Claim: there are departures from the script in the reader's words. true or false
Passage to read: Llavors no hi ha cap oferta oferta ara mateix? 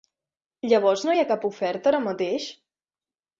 true